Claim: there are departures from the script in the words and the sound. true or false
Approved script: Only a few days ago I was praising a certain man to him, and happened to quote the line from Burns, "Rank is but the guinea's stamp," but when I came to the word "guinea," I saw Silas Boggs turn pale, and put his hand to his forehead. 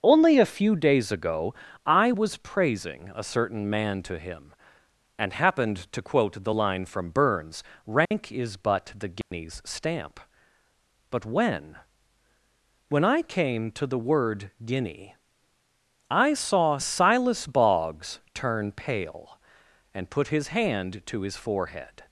true